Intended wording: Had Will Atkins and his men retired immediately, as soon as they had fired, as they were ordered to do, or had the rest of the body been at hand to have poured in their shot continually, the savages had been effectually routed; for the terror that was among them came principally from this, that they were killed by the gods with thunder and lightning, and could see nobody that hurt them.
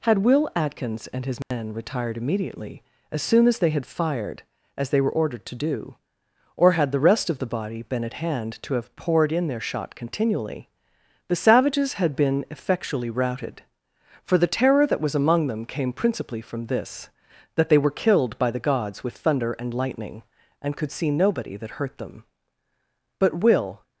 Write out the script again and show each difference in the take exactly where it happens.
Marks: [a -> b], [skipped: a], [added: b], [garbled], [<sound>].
Had Will Atkins and his men [dropout] retired immediately, as soon as they had fired, as they were ordered to do, or had the rest of the body been at hand to have poured in their shot continually, the savages had been effectually routed; for the terror that was among them came principally from this, that they were killed by the gods with thunder and lightning, and could see nobody that hurt them. [added: But Will]